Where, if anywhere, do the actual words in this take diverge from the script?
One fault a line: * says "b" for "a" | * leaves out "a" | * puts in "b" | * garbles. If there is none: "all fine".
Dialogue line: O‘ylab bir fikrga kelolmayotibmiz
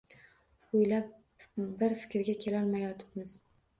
all fine